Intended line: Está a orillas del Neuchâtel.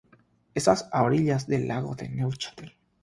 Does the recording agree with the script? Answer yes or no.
no